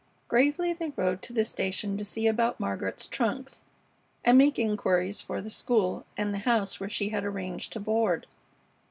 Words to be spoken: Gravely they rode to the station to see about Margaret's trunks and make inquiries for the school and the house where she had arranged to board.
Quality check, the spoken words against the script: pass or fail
pass